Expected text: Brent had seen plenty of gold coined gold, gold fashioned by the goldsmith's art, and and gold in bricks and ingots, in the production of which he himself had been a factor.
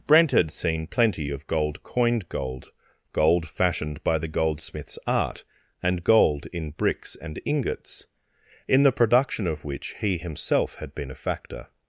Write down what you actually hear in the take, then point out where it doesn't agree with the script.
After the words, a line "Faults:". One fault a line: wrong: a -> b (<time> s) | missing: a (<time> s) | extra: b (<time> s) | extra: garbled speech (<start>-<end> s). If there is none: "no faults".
Brent had seen plenty of gold coined gold, gold fashioned by the goldsmith's art, and gold in bricks and ingots, in the production of which he himself had been a factor.
Faults:
missing: and (6.0 s)